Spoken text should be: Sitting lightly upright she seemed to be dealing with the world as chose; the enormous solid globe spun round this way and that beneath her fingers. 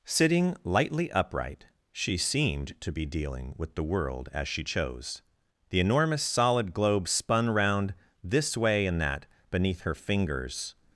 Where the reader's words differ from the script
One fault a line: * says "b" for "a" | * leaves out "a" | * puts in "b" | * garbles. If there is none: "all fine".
* puts in "she"